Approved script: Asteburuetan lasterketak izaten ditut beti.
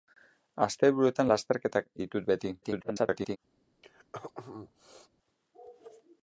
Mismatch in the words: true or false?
true